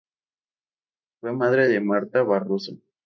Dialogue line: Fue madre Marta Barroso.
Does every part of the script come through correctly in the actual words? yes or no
no